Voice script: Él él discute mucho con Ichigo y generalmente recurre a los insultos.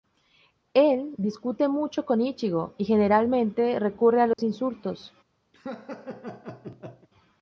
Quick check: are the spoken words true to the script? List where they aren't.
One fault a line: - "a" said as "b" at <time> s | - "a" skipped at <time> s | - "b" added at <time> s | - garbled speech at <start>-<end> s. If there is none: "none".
- "él" skipped at 1.1 s